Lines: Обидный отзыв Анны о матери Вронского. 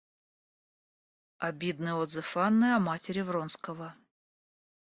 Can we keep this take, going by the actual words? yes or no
yes